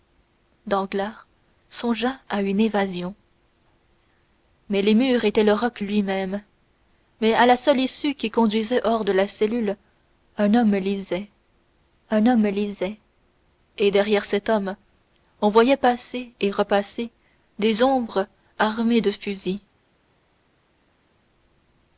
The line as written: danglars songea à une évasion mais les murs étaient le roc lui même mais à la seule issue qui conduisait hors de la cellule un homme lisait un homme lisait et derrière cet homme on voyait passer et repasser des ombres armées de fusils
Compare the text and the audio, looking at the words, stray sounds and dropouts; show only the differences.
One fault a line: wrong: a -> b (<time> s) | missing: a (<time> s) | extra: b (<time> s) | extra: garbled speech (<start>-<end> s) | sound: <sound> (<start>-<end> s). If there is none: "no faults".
no faults